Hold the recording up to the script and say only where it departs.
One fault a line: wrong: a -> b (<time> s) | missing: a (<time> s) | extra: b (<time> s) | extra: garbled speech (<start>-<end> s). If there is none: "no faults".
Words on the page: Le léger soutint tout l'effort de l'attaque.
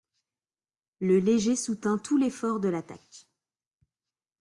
no faults